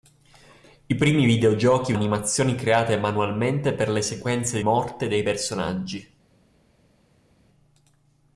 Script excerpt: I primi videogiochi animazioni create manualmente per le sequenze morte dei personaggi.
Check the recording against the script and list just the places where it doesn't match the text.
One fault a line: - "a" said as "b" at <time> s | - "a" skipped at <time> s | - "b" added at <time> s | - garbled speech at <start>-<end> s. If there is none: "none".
none